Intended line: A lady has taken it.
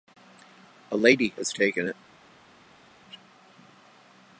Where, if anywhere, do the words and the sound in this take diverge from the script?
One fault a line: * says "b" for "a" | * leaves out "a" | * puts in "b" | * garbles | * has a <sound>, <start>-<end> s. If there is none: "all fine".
all fine